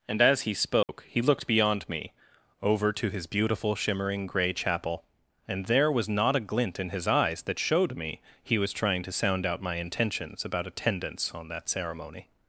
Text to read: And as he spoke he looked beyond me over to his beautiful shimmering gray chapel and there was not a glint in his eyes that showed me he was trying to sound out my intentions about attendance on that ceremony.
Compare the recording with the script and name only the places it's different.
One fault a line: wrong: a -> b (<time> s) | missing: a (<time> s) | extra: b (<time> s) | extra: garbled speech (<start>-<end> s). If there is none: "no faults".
no faults